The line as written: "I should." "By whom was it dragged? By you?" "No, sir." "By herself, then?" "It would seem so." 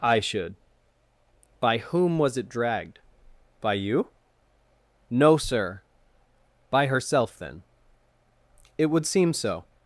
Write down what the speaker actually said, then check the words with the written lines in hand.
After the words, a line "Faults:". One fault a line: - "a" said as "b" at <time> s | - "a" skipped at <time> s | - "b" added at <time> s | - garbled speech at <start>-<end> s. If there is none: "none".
"I should." "By whom was it dragged? By you?" "No, sir." "By herself, then?" "It would seem so."
Faults:
none